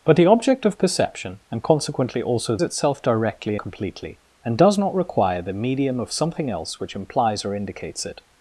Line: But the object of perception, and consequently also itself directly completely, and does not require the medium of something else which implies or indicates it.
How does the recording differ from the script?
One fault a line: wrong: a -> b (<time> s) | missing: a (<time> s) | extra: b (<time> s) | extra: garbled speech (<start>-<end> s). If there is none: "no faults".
no faults